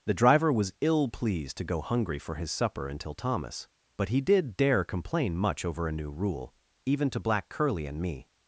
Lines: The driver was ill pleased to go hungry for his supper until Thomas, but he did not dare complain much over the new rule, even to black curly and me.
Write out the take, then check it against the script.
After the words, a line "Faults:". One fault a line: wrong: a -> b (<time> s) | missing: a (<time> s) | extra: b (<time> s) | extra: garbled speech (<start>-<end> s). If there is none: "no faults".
The driver was ill pleased to go hungry for his supper until Thomas, but he did dare complain much over a new rule, even to black curly and me.
Faults:
missing: not (4.6 s)
wrong: the -> a (5.9 s)